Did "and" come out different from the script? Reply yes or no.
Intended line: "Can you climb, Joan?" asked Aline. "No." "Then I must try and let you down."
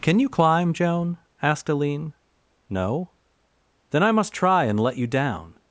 no